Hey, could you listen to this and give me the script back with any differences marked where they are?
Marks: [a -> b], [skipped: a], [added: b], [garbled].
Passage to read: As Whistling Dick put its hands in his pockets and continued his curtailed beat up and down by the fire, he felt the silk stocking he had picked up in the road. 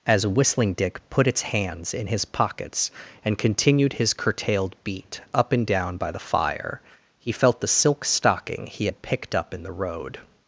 As Whistling Dick put its hands in his pockets and continued his curtailed beat up and down by the fire, he felt the silk stocking he had picked up in the road.